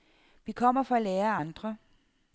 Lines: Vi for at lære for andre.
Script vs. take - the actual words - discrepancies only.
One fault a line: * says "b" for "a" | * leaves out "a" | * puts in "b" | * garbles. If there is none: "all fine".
* puts in "kommer"
* says "af" for "for"